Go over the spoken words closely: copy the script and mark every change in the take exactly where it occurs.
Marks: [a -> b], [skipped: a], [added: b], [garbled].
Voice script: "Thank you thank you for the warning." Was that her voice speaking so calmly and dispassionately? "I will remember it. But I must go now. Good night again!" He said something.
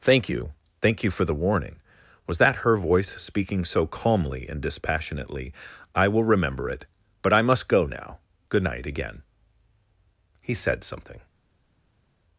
"Thank you thank you for the warning." Was that her voice speaking so calmly and dispassionately? "I will remember it. But I must go now. Good night again!" He said something.